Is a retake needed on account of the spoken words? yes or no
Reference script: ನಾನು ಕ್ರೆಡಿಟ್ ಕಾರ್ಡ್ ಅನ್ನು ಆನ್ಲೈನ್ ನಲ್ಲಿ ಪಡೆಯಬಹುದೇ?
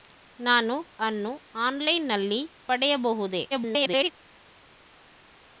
yes